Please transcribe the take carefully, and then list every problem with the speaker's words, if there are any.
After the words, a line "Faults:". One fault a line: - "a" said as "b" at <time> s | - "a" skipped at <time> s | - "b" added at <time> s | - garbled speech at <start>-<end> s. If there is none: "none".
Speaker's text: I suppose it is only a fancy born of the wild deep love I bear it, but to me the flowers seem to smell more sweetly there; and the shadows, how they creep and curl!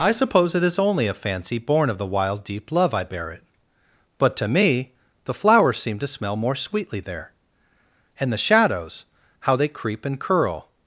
I suppose it is only a fancy born of the wild deep love I bear it, but to me the flowers seem to smell more sweetly there; and the shadows, how they creep and curl!
Faults:
none